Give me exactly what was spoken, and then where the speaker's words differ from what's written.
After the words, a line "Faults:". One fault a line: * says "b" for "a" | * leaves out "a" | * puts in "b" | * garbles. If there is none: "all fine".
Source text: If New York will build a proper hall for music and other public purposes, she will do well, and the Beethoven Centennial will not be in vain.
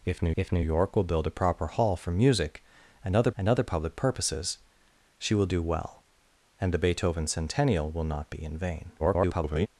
If New if New York will build a proper hall for music and other and other public purposes, she will do well, and the Beethoven Centennial will not be in vain. [garbled]
Faults:
* puts in "if New"
* puts in "and other"
* garbles